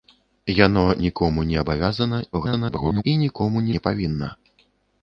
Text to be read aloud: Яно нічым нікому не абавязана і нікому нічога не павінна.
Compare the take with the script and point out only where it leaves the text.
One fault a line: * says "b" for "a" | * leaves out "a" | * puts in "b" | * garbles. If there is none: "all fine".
* leaves out "нічым"
* garbles
* leaves out "нічога"